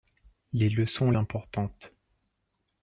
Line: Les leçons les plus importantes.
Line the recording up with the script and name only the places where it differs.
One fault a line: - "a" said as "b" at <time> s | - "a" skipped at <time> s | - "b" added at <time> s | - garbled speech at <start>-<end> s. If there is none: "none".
- "les plus" skipped at 1.1 s